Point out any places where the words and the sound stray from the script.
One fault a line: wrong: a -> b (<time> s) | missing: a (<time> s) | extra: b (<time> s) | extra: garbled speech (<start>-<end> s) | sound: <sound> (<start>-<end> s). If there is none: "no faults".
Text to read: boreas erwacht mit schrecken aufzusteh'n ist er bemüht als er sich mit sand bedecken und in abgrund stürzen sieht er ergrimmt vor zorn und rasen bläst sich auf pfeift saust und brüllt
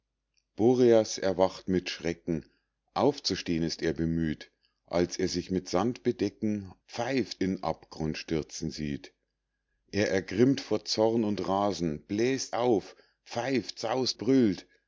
wrong: und -> pfeift (6.9 s)
missing: sich (12.6 s)
missing: und (14.2 s)